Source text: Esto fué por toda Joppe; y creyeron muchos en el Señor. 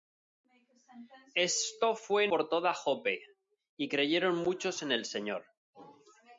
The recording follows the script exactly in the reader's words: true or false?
true